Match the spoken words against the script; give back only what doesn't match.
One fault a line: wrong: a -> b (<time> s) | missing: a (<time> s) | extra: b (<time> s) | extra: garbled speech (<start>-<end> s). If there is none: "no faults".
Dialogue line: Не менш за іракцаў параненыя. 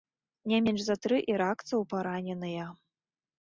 extra: тры (1.1 s)